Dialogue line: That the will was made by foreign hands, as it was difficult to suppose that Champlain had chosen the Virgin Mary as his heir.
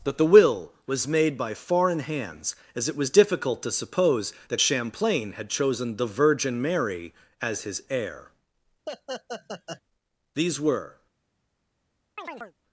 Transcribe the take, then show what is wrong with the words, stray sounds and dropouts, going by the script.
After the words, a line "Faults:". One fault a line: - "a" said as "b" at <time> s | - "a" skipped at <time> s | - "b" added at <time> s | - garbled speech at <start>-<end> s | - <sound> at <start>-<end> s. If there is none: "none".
That the will was made by foreign hands, as it was difficult to suppose that Champlain had chosen the Virgin Mary as his heir. These were
Faults:
- laugh at 8.9-9.8 s
- "These were" added at 10.3 s
- chirp at 12.2-12.5 s